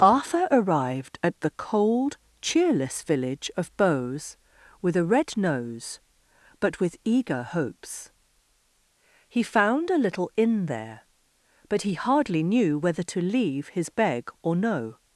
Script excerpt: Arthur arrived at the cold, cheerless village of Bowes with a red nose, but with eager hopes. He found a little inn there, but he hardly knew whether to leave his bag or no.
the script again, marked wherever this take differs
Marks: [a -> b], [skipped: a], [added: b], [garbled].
Arthur arrived at the cold, cheerless village of Bowes with a red nose, but with eager hopes. He found a little inn there, but he hardly knew whether to leave his [bag -> beg] or no.